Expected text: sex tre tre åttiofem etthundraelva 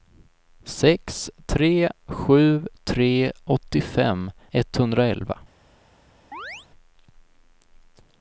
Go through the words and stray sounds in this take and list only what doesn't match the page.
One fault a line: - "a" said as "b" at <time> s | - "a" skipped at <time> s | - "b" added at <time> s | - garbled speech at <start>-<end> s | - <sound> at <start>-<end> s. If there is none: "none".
- "sju" added at 2.0 s
- chirp at 6.3-6.7 s